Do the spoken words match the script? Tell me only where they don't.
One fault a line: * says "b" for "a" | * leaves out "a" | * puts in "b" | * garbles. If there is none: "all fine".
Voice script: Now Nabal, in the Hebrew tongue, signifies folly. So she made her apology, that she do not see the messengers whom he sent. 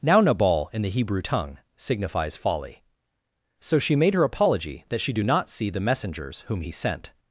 all fine